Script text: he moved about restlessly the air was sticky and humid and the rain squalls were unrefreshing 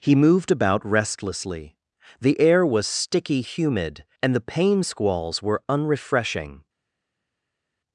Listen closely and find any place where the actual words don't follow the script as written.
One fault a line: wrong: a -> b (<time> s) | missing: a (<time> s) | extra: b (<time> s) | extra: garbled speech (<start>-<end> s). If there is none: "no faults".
missing: and (3.4 s)
wrong: rain -> pain (4.4 s)